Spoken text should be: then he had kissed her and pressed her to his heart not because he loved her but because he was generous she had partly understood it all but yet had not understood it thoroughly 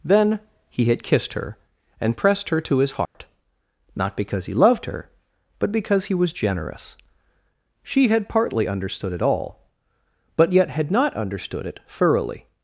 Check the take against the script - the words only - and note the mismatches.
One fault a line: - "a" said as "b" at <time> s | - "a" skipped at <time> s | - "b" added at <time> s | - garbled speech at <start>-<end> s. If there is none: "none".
none